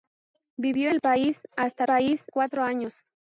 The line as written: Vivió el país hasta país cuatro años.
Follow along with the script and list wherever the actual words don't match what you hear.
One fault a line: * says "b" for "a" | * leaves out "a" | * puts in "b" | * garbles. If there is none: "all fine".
all fine